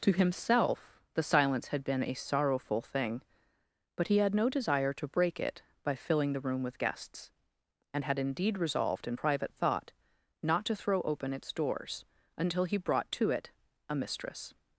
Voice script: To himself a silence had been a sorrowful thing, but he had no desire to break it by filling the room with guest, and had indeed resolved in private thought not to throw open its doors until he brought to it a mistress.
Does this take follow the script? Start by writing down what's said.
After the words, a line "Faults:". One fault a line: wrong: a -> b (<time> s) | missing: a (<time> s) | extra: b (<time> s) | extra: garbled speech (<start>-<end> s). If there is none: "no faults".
To himself the silence had been a sorrowful thing, but he had no desire to break it by filling the room with guests, and had indeed resolved in private thought not to throw open its doors until he brought to it a mistress.
Faults:
wrong: a -> the (1.1 s)
wrong: guest -> guests (6.8 s)